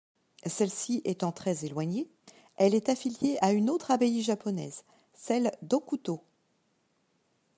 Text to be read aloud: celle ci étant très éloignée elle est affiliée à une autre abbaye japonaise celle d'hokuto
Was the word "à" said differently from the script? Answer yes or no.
no